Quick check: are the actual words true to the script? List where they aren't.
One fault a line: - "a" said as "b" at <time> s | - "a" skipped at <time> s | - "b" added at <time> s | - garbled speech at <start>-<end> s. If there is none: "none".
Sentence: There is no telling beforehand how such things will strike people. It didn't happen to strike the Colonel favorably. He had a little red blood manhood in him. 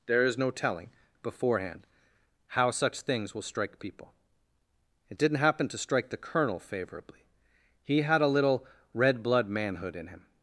none